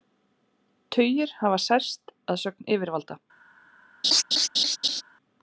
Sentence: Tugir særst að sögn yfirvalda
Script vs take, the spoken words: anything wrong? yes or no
yes